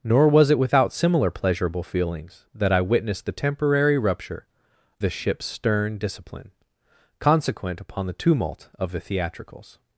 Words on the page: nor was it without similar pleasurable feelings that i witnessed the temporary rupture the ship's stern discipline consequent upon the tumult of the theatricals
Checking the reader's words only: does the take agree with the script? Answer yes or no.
yes